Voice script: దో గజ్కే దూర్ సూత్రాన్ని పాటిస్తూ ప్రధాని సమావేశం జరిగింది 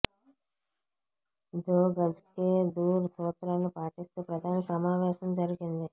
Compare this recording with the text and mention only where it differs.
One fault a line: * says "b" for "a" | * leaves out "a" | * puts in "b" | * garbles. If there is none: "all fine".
all fine